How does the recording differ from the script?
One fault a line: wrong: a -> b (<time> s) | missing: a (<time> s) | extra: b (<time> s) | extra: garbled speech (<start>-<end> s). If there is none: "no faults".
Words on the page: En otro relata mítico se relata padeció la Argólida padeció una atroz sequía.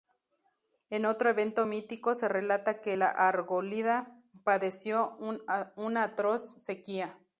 wrong: relata -> evento (1.3 s)
wrong: padeció -> que (2.8 s)